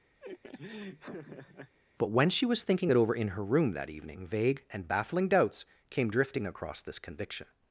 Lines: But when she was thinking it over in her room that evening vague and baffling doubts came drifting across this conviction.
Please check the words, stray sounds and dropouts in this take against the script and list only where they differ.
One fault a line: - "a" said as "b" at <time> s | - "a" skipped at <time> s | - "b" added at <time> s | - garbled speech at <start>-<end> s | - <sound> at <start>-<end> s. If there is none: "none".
- laugh at 0.2-1.8 s